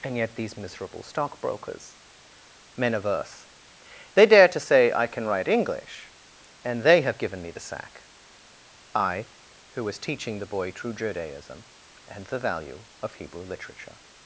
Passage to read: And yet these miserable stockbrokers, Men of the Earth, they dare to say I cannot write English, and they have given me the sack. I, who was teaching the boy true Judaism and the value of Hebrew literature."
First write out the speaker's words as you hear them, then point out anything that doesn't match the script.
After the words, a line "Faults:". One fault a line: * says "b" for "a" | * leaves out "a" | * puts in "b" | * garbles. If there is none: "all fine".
And yet these miserable stockbrokers, Men of Earth, they dare to say I can write English, and they have given me the sack. I, who was teaching the boy true Judaism and the value of Hebrew literature."
Faults:
* leaves out "the"
* says "can" for "cannot"